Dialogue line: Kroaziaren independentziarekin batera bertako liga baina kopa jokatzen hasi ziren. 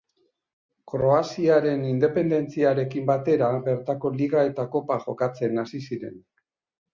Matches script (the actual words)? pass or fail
fail